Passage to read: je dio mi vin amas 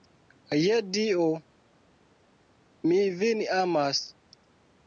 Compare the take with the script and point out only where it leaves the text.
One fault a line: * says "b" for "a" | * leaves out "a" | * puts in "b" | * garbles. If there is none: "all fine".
all fine